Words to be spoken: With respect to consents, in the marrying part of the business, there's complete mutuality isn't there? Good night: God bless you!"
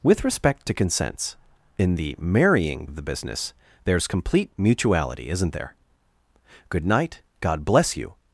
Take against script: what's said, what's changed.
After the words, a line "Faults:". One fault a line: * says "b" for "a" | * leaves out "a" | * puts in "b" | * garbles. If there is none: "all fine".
With respect to consents, in the marrying of the business, there's complete mutuality isn't there? Good night: God bless you!"
Faults:
* leaves out "part"